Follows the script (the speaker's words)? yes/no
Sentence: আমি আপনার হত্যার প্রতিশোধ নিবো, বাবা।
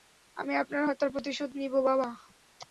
yes